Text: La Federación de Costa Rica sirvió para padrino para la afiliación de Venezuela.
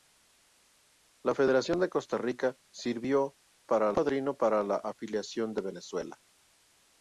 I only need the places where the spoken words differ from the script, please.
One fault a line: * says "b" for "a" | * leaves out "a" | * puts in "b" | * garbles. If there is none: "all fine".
all fine